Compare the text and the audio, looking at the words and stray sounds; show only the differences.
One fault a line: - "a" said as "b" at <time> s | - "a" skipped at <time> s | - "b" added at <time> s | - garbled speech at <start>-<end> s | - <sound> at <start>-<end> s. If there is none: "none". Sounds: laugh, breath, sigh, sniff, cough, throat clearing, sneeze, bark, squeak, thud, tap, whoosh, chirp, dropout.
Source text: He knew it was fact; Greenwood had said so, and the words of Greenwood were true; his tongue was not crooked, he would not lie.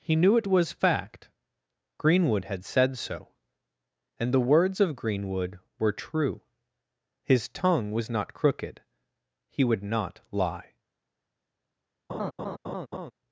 - laugh at 12.1-13.1 s